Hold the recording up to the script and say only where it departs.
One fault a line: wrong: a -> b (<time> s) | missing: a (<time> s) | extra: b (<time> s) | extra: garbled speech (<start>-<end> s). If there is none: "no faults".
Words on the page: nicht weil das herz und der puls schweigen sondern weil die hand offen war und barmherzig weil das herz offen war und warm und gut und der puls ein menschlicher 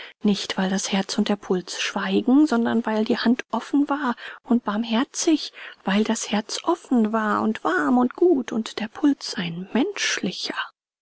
no faults